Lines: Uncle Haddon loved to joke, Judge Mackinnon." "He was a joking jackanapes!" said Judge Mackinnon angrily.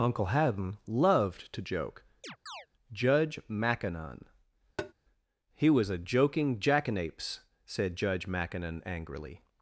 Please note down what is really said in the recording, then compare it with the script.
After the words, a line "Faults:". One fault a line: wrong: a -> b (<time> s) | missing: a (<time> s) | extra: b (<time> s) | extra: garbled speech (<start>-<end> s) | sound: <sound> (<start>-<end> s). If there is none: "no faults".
Uncle Haddon loved to joke, Judge Mackinnon." "He was a joking jackanapes!" said Judge Mackinnon angrily.
Faults:
sound: chirp (2.2-2.7 s)
sound: tap (4.8-4.9 s)